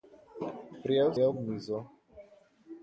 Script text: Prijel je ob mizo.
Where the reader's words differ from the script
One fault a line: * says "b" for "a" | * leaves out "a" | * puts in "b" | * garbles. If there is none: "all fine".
all fine